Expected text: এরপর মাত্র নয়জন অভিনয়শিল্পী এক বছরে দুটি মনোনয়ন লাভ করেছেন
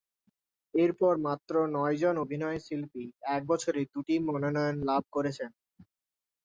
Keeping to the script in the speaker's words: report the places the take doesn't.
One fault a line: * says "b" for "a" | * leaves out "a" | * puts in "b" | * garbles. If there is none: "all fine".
all fine